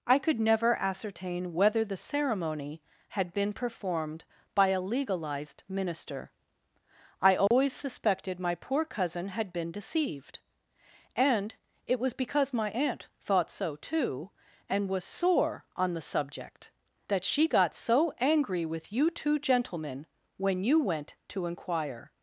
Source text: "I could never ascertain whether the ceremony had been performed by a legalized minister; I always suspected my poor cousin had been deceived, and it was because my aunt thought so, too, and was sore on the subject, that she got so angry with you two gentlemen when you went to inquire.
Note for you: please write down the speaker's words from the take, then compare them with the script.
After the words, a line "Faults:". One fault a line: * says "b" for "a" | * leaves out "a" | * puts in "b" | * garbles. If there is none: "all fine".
"I could never ascertain whether the ceremony had been performed by a legalized minister; I always suspected my poor cousin had been deceived, and it was because my aunt thought so, too, and was sore on the subject, that she got so angry with you two gentlemen when you went to inquire.
Faults:
all fine